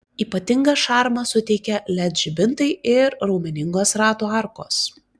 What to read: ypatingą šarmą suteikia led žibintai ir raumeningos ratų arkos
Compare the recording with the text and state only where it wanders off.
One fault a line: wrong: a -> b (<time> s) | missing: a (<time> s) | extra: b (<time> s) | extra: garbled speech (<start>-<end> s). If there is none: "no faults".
no faults